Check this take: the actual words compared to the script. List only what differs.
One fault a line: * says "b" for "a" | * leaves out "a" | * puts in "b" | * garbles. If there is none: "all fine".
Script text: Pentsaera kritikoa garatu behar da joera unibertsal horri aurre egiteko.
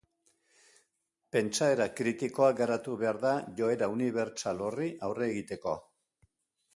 all fine